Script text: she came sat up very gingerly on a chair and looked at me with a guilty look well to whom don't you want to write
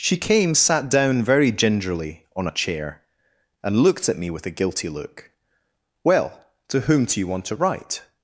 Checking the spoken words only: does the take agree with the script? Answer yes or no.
no